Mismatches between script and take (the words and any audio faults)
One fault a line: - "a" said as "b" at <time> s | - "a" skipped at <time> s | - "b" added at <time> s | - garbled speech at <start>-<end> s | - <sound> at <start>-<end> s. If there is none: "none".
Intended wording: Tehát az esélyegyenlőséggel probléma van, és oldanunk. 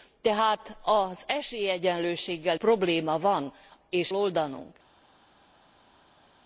none